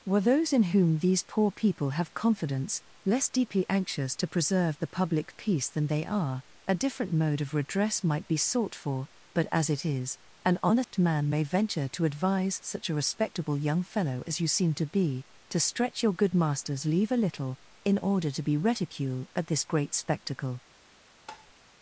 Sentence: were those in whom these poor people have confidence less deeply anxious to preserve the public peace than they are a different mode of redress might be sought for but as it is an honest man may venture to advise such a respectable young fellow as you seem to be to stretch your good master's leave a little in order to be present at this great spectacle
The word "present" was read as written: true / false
false